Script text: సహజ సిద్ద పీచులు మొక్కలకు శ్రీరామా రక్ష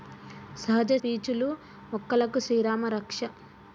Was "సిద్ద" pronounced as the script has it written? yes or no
no